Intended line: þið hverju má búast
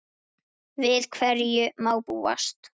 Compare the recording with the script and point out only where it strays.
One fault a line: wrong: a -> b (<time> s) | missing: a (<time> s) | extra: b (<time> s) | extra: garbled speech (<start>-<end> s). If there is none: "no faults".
wrong: þið -> við (0.8 s)